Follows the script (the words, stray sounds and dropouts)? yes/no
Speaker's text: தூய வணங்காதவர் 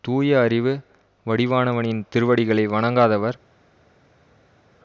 no